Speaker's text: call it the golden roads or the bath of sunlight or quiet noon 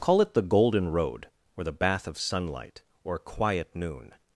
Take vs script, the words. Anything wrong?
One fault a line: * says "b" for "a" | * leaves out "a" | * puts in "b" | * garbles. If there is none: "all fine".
* says "road" for "roads"